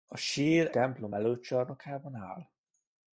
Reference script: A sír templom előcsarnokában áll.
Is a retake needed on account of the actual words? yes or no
no